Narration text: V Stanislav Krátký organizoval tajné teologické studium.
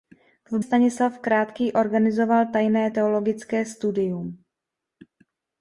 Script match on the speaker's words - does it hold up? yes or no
yes